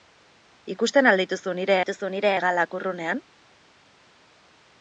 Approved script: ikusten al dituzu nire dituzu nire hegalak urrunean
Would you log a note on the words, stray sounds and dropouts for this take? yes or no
no